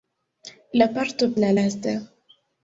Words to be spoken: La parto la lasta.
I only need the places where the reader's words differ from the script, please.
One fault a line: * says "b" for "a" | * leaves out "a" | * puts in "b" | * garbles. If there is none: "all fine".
all fine